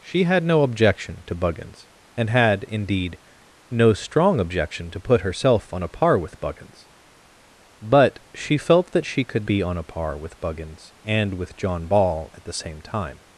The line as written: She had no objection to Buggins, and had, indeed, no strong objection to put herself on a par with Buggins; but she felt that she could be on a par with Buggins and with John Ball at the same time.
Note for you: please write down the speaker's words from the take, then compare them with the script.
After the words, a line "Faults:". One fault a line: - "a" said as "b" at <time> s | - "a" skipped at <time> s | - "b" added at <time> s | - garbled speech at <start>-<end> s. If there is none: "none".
She had no objection to Buggins, and had, indeed, no strong objection to put herself on a par with Buggins; but she felt that she could be on a par with Buggins and with John Ball at the same time.
Faults:
none